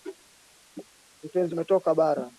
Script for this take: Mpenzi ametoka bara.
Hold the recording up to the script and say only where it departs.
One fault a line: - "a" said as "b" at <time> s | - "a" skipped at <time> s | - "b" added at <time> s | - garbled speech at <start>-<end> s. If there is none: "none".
none